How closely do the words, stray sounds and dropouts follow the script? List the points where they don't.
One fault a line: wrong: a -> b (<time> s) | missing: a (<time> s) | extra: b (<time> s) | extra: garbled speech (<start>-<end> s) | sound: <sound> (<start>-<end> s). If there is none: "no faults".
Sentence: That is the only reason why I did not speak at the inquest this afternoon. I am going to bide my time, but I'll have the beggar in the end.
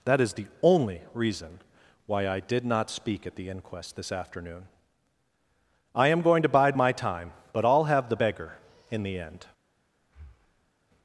sound: breath (10.0-10.7 s)